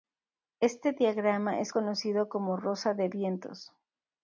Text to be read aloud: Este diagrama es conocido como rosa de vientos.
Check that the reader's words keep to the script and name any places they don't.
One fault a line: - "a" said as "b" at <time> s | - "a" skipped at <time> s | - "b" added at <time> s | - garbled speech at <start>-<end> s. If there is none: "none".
none